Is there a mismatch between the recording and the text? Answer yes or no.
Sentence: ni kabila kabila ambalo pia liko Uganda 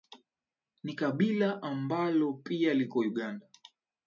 yes